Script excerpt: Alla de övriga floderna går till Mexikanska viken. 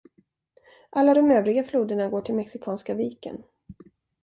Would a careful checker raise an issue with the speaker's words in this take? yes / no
no